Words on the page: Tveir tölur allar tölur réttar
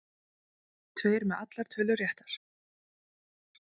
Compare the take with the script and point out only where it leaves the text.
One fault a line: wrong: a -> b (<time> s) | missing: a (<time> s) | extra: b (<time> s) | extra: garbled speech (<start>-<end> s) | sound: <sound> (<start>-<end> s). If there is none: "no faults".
wrong: tölur -> með (1.3 s)